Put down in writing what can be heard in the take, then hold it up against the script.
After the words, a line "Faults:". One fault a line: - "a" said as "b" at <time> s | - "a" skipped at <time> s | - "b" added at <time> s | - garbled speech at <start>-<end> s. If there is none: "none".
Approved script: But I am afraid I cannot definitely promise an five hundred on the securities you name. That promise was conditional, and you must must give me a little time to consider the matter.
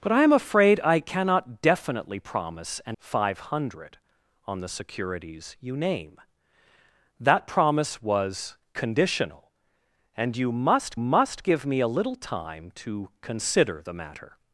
But I am afraid I cannot definitely promise an five hundred on the securities you name. That promise was conditional, and you must must give me a little time to consider the matter.
Faults:
none